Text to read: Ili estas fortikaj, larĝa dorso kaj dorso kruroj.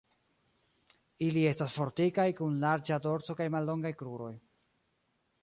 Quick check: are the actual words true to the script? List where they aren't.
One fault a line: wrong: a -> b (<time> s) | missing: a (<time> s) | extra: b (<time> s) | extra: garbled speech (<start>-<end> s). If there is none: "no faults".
extra: kun (2.4 s)
wrong: dorso -> mallongaj (3.6 s)